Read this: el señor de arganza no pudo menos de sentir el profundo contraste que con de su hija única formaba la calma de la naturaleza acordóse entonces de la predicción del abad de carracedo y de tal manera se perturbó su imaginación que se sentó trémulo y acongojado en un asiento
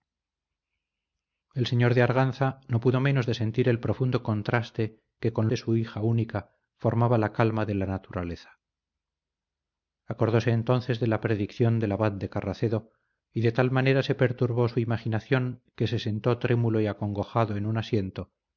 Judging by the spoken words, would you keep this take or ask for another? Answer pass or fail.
pass